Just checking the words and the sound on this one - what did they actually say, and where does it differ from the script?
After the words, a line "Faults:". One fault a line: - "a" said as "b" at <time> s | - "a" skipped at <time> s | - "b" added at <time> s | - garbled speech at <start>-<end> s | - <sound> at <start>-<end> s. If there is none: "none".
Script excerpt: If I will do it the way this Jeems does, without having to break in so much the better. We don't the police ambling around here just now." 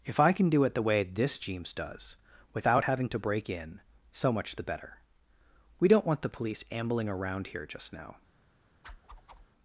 If I can do it the way this Jeems does, without having to break in so much the better. We don't want the police ambling around here just now."
Faults:
- "will" said as "can" at 0.3 s
- "want" added at 6.1 s
- whoosh at 8.8-9.5 s